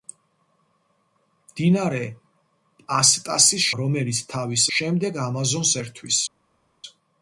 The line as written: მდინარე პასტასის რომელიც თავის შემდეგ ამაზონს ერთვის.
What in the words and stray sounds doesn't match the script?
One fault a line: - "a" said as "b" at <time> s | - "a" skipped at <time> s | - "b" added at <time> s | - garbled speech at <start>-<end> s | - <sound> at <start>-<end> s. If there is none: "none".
none